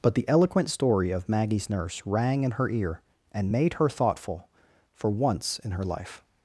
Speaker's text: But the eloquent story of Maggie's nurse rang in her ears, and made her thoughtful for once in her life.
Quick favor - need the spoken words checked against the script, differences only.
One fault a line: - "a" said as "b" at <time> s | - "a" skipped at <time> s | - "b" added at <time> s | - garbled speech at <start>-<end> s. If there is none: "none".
- "ears" said as "ear" at 2.7 s